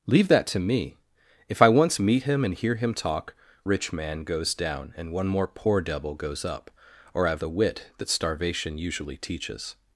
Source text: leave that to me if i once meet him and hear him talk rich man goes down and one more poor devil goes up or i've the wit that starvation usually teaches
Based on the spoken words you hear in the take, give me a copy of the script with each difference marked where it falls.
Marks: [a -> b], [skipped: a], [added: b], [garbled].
leave that to me if i once meet him and hear him talk rich man goes down and one more poor devil goes up or i've the wit that starvation usually teaches